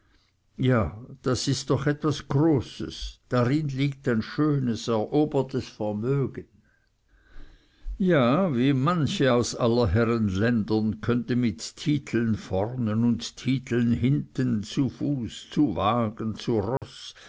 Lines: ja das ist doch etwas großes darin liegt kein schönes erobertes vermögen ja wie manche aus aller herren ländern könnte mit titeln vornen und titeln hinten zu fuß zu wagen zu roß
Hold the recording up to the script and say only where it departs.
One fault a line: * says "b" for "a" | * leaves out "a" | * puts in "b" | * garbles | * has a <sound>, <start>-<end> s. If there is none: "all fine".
* says "ein" for "kein"
* has a dropout, 16.8-16.8 s